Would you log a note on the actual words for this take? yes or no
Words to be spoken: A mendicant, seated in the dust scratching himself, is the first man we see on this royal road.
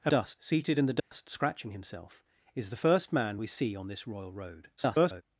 yes